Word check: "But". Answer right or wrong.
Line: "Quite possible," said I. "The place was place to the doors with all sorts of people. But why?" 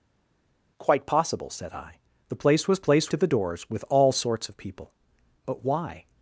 right